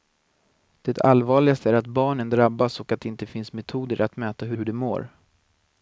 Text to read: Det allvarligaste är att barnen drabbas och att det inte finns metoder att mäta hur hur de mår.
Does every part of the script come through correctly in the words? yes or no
yes